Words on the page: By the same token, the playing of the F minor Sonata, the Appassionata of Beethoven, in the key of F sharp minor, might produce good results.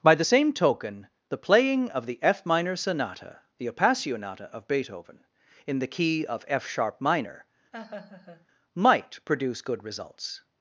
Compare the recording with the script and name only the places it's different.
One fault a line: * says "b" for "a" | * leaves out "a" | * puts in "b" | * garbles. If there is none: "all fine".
all fine